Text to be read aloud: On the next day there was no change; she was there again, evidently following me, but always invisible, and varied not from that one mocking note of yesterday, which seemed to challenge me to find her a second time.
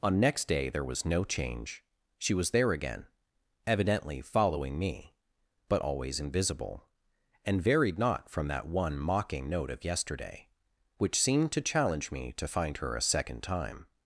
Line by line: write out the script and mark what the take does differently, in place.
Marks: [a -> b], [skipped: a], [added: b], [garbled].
On [skipped: the] next day there was no change; she was there again, evidently following me, but always invisible, and varied not from that one mocking note of yesterday, which seemed to challenge me to find her a second time.